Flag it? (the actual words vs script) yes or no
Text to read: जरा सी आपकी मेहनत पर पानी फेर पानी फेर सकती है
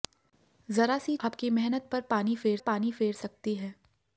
no